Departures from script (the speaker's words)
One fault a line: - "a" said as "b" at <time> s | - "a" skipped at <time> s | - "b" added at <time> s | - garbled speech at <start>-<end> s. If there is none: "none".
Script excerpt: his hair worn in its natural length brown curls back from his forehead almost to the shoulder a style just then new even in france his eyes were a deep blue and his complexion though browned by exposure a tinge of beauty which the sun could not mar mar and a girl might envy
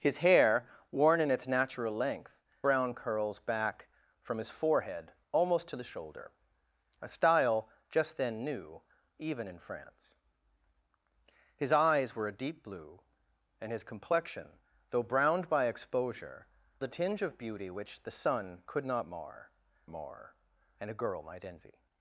none